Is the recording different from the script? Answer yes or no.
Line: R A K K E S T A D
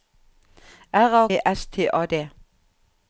yes